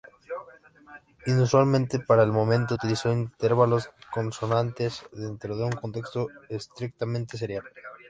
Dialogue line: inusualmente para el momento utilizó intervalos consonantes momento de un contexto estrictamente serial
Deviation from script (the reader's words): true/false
true